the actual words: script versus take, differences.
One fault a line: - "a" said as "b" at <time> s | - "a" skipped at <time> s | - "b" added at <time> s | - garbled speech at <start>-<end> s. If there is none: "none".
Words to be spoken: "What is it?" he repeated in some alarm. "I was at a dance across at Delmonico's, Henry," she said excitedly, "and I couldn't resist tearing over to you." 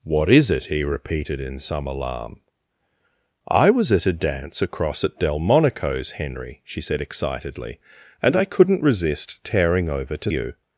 none